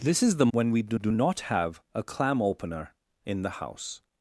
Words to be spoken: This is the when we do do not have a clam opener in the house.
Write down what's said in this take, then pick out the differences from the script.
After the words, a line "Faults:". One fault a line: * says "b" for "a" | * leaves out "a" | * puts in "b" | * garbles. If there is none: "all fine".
This is the when we do do not have a clam opener in the house.
Faults:
all fine